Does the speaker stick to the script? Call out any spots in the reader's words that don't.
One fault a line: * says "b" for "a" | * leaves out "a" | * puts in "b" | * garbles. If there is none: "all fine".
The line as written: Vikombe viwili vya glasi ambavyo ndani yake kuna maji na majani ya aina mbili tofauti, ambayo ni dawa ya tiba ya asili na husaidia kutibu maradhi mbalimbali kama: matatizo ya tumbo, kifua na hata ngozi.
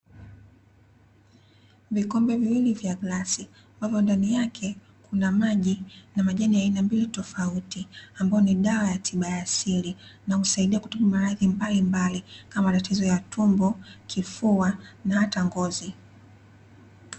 all fine